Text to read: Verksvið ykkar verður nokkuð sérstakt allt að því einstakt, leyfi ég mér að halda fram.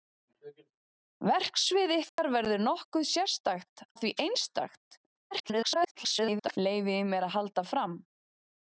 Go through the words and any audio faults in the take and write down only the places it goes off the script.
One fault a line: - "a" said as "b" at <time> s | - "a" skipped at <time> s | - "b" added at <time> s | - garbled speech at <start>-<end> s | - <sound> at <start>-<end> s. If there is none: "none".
- dropout at 2.1-2.2 s
- "allt" skipped at 3.9 s
- garbled speech at 5.3-6.6 s